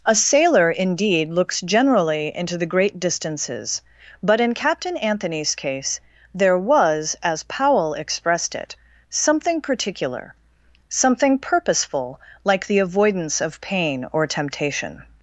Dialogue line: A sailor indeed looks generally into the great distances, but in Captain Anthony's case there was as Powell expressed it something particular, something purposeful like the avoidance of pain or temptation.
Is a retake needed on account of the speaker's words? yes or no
no